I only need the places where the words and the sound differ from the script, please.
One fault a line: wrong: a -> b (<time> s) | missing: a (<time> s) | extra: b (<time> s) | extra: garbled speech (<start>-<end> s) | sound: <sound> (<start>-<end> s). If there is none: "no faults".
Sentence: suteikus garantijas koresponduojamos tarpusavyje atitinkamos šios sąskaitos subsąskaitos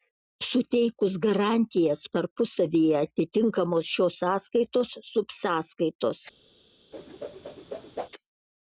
missing: koresponduojamos (2.0 s)
sound: whoosh (6.9-8.1 s)